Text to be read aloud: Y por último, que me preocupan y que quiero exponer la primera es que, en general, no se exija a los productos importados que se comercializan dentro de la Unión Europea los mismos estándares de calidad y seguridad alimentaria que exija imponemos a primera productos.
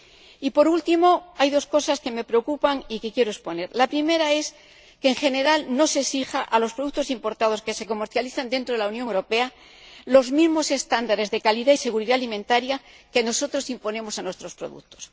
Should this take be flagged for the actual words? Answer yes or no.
yes